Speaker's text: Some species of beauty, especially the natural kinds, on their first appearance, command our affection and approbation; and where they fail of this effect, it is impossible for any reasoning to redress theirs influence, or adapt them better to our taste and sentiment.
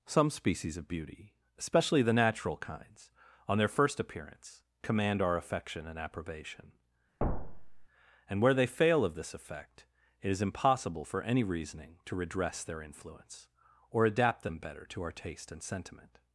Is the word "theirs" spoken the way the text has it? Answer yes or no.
no